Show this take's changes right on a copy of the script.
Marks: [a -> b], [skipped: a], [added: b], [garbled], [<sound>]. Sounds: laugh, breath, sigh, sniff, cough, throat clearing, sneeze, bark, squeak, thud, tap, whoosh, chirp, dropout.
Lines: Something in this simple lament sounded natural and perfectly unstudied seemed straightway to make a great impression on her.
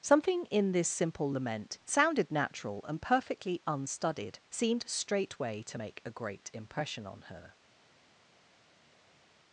Something in this simple lament sounded natural and perfectly unstudied seemed straightway to make a great impression on her.